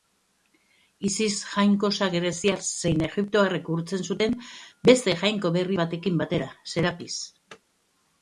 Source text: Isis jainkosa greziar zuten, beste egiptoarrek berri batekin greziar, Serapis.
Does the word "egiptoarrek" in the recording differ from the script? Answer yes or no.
yes